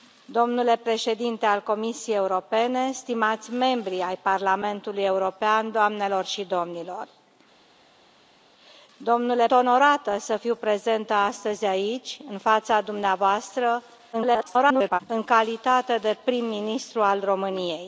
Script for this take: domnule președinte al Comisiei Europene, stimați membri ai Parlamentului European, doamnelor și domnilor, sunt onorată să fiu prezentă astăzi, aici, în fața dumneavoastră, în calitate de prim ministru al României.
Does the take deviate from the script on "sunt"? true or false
true